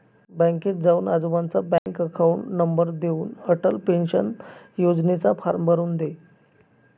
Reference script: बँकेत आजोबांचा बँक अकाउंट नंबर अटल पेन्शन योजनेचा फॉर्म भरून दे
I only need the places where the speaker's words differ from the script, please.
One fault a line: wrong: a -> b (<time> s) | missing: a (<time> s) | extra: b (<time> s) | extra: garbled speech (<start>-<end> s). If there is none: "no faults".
extra: जाऊन (0.8 s)
extra: देऊन (3.0 s)